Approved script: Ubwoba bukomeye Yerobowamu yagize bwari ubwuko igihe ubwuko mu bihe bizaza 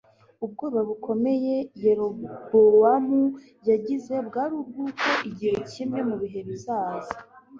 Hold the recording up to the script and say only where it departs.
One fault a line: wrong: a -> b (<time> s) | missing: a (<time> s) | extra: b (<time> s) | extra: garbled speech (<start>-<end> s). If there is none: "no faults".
wrong: ubwuko -> kimwe (5.7 s)